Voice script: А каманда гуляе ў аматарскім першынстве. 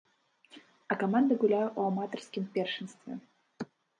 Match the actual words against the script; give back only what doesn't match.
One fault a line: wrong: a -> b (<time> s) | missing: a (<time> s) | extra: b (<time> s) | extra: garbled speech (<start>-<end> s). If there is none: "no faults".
no faults